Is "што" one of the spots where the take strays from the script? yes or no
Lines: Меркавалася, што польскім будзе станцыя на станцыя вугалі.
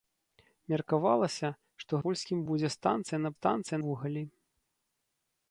no